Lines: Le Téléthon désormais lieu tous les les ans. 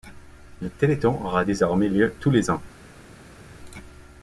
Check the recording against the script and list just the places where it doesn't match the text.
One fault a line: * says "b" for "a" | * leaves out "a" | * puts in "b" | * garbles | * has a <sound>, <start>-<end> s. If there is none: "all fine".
* puts in "aura"
* leaves out "les"